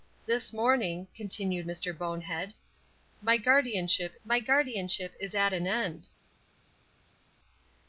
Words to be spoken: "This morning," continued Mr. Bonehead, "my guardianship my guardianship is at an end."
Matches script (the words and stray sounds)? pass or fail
pass